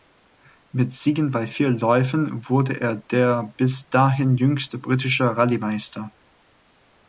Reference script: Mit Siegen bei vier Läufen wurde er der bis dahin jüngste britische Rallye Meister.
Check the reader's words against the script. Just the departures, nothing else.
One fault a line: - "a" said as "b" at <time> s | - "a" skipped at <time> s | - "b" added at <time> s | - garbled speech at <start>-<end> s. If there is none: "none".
none